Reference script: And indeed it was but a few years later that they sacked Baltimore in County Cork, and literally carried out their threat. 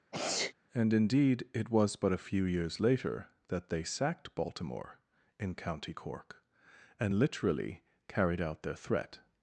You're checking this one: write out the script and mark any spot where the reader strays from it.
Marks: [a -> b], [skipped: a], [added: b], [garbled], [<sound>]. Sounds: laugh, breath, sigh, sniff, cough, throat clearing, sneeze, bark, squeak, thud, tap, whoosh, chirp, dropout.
[sneeze] And indeed it was but a few years later that they sacked Baltimore in County Cork, and literally carried out their threat.